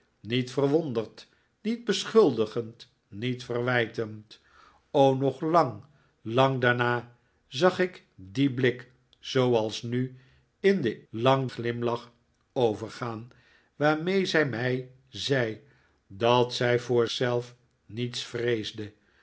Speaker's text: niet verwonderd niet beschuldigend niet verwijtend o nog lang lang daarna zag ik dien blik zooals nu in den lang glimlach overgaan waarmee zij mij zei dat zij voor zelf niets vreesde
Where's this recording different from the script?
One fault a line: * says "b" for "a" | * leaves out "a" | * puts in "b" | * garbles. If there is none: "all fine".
all fine